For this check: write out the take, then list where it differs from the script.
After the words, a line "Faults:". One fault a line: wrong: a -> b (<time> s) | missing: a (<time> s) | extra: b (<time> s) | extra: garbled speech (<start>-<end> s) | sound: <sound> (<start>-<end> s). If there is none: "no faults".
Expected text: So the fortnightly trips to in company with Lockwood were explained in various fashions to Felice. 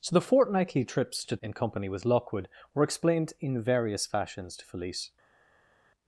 So the fortnightly trips to in company with Lockwood were explained in various fashions to Felice.
Faults:
no faults